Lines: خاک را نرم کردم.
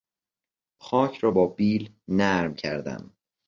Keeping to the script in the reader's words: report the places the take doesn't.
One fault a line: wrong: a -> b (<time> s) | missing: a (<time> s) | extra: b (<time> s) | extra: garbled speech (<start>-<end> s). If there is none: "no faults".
extra: با بیل (1.3 s)